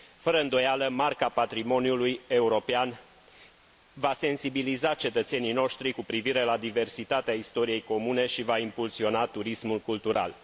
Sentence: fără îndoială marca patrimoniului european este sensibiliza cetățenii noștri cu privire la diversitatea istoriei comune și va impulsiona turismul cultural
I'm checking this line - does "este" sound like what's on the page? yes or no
no